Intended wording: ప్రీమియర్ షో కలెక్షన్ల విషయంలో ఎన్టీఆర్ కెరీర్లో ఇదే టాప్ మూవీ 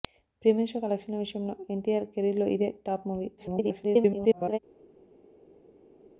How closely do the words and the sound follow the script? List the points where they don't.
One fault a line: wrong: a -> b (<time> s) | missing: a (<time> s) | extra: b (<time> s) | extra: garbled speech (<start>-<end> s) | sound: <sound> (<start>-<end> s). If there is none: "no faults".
extra: garbled speech (3.4-4.6 s)